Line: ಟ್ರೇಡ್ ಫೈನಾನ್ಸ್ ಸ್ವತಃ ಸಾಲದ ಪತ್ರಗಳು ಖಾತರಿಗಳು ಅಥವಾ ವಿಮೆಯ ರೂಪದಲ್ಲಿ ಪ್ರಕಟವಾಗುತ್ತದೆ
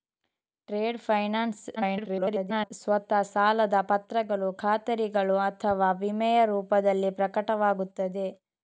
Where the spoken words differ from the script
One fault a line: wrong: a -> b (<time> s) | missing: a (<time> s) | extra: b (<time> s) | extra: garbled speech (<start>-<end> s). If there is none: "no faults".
extra: garbled speech (1.8-2.7 s)